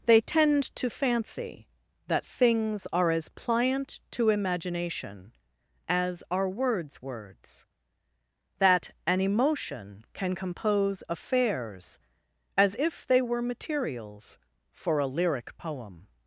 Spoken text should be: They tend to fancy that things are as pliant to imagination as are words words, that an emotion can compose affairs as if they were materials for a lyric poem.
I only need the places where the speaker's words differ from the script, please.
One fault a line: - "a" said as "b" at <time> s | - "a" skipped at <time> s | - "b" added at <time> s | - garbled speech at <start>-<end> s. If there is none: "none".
none